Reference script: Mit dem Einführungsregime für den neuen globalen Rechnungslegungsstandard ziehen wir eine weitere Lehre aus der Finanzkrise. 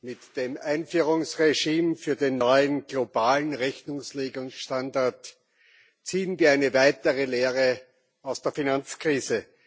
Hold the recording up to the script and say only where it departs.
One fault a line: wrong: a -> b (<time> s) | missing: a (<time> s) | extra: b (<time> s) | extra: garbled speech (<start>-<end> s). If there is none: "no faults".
no faults